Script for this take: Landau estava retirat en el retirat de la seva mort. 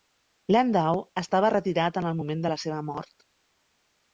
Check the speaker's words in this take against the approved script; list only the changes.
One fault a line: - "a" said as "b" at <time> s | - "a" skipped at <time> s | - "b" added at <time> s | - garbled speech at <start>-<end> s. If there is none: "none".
- "retirat" said as "moment" at 2.2 s